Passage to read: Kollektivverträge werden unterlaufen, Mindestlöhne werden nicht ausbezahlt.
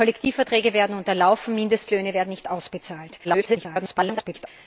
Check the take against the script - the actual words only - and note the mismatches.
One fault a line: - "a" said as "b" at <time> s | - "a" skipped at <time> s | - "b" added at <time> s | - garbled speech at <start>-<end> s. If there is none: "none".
- garbled speech at 3.2-4.5 s